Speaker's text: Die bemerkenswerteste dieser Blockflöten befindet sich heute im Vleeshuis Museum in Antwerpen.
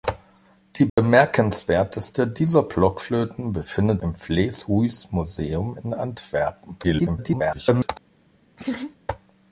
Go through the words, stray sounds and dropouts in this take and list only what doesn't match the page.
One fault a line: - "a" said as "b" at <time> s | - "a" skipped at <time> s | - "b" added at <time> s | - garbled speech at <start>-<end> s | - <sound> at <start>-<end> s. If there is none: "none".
- dropout at 0.9-1.0 s
- "sich heute" skipped at 4.0 s
- garbled speech at 6.8-7.9 s
- laugh at 8.6-9.0 s